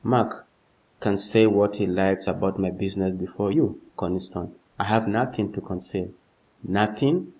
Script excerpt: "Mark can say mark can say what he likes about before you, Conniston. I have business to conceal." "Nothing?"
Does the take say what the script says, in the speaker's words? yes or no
no